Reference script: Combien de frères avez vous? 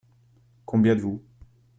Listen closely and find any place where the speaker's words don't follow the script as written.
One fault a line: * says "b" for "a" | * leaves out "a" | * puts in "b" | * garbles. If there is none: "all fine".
* leaves out "de frères avez"